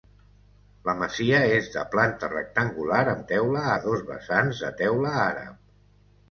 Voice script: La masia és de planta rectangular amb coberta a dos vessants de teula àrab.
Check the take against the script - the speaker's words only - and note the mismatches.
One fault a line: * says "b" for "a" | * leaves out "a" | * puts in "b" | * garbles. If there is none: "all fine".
* says "teula" for "coberta"